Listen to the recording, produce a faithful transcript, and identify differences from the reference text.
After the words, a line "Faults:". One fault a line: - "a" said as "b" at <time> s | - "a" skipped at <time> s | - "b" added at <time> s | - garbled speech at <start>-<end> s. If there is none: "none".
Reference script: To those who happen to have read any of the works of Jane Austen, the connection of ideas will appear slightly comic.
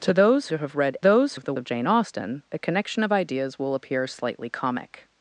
To those to have read those of the of Jane Austen, the connection of ideas will appear slightly comic.
Faults:
- "who happen" skipped at 0.5 s
- "any" said as "those" at 1.0 s
- "works" skipped at 1.5 s